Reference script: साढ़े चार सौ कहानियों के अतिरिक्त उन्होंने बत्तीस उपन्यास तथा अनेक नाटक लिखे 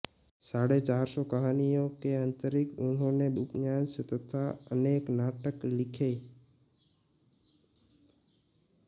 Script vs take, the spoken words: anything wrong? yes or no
yes